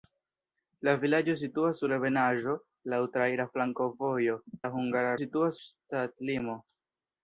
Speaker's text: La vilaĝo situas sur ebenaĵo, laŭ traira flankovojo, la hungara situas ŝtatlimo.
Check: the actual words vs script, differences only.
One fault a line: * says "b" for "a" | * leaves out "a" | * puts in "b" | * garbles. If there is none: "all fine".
all fine